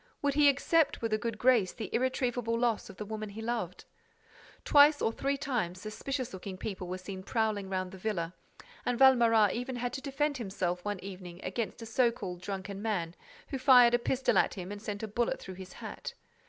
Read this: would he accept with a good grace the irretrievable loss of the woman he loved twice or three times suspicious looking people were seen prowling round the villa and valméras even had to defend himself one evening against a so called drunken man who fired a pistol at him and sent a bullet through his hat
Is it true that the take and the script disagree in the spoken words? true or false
false